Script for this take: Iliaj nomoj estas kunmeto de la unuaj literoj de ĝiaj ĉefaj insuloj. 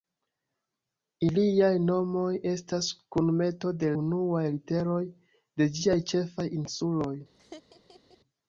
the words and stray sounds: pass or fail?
fail